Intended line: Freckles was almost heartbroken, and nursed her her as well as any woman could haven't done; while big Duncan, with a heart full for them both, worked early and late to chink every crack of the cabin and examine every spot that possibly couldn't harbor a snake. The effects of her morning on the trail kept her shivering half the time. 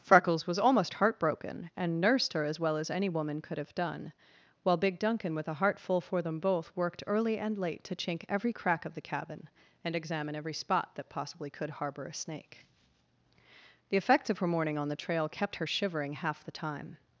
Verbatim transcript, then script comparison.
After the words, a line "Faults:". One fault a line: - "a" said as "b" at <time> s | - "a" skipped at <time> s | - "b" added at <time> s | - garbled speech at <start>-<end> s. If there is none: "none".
Freckles was almost heartbroken, and nursed her as well as any woman could have done; while big Duncan, with a heart full for them both, worked early and late to chink every crack of the cabin and examine every spot that possibly could harbor a snake. The effects of her morning on the trail kept her shivering half the time.
Faults:
- "her" skipped at 2.4 s
- "haven't" said as "have" at 3.6 s
- "couldn't" said as "could" at 11.5 s